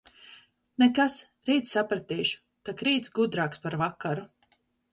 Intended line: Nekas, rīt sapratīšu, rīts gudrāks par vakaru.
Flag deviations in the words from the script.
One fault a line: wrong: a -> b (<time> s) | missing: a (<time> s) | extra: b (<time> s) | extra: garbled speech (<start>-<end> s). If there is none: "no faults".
extra: tak (2.7 s)